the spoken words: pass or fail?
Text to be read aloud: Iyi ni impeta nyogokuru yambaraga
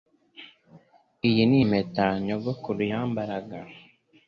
pass